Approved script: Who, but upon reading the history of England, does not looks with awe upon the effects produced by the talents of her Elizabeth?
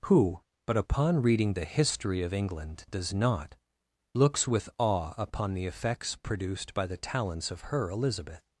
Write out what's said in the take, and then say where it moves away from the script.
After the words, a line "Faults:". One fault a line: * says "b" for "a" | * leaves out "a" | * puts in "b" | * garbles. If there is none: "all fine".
Who, but upon reading the history of England, does not looks with awe upon the effects produced by the talents of her Elizabeth?
Faults:
all fine